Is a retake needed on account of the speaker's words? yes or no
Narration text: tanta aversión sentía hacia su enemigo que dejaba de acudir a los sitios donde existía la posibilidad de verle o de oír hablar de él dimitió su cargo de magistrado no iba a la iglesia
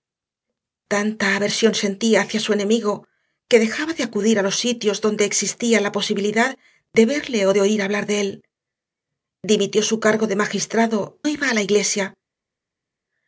yes